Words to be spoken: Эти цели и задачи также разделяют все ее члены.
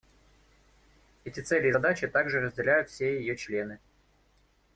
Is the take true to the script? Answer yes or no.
yes